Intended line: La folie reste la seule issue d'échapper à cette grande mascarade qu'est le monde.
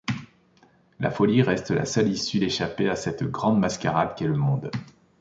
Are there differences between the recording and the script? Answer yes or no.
no